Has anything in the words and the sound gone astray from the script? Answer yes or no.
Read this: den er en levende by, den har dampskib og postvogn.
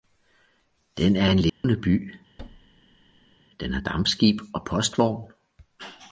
yes